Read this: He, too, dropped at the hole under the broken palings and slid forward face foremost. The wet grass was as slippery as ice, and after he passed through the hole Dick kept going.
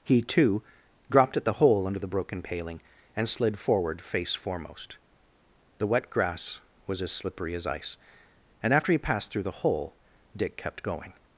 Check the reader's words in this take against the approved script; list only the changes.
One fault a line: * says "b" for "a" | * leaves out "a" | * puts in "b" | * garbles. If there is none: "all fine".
* says "paling" for "palings"